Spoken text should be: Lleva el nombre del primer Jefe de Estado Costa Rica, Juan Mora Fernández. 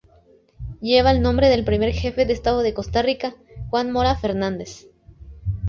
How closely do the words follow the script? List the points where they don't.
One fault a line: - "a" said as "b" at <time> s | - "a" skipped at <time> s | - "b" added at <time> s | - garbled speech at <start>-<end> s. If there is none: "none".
- "de" added at 2.6 s